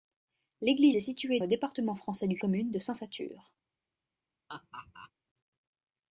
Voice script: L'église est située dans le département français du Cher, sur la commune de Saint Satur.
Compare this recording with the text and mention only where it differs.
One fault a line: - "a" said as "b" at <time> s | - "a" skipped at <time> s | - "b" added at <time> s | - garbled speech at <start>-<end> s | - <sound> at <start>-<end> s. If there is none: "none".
- "dans" skipped at 1.4 s
- "Cher sur la" skipped at 2.4 s
- laugh at 4.5-5.1 s